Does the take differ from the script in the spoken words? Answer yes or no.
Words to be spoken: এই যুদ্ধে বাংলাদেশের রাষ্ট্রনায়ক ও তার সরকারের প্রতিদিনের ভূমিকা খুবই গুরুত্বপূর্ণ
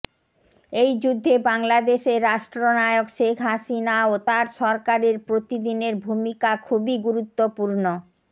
yes